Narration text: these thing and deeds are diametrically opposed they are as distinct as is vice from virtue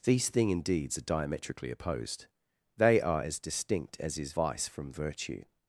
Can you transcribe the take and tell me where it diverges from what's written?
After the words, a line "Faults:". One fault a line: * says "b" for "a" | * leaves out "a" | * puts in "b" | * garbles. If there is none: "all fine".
these thing and deeds are diametrically opposed they are as distinct as is vice from virtue
Faults:
all fine